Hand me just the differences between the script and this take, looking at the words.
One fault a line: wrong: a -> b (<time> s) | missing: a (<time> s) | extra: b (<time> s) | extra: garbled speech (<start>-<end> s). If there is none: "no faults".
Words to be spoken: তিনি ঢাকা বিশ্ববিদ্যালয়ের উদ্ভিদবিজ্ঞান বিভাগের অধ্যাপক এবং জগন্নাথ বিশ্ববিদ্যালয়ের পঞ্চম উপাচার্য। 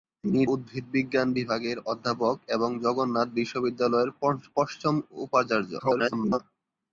missing: ঢাকা বিশ্ববিদ্যালয়ের (0.4 s)
extra: garbled speech (5.8-6.4 s)